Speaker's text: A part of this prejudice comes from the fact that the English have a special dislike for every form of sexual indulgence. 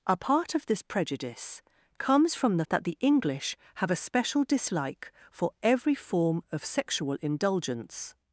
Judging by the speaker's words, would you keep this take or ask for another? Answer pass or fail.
fail